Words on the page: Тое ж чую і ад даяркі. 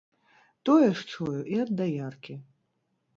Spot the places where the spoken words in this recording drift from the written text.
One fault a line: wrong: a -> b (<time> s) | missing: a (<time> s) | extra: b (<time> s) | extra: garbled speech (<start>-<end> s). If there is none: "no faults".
no faults